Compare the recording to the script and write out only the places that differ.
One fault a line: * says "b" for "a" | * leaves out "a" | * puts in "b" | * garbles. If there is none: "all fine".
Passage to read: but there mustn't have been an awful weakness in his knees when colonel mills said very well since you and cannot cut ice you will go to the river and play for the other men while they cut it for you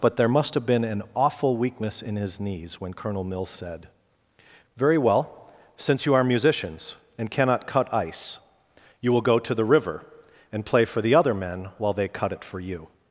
* says "must" for "mustn't"
* puts in "are musicians"